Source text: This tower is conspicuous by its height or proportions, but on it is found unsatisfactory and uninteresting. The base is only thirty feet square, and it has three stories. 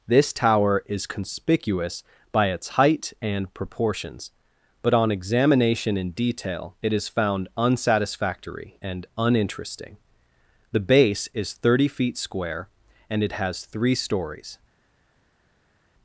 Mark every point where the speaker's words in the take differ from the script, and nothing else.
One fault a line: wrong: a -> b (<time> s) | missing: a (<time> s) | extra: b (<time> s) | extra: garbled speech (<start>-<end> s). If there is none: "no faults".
wrong: or -> and (3.2 s)
extra: examination in detail (5.1 s)
missing: only (11.5 s)